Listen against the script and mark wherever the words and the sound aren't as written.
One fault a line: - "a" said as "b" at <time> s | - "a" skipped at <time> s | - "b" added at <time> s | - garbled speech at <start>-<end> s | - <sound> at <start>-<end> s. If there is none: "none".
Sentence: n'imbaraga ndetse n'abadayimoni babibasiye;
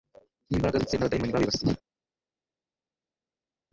none